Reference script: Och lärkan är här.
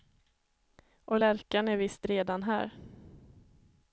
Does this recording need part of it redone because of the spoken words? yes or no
yes